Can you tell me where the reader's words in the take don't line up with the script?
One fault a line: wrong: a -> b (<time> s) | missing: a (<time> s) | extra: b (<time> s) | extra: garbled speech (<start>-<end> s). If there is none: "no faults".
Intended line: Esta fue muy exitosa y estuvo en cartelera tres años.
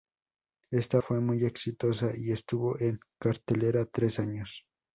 no faults